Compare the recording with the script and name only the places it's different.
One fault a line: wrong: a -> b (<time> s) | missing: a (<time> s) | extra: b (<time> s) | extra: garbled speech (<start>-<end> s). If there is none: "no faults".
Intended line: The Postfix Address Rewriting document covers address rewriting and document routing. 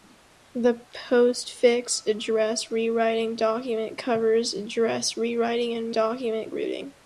no faults